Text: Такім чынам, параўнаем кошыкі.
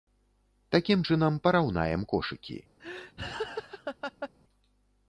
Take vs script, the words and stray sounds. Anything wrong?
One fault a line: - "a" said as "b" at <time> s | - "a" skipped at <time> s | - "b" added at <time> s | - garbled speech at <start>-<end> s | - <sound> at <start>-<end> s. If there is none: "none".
- laugh at 2.8-4.3 s